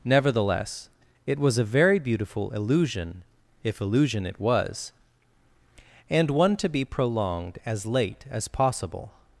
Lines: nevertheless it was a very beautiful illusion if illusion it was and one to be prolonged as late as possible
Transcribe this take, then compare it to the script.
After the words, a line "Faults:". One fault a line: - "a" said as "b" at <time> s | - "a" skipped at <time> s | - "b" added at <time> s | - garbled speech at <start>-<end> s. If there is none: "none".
nevertheless it was a very beautiful illusion if illusion it was and one to be prolonged as late as possible
Faults:
none